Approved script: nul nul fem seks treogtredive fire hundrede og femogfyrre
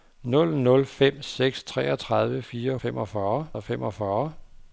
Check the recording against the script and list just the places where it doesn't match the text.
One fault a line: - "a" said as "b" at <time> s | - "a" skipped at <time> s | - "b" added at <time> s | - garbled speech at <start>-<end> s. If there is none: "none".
- "hundrede" said as "femogfyrre" at 2.8 s